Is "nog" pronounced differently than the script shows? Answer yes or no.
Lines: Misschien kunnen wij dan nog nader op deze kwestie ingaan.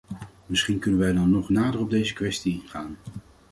no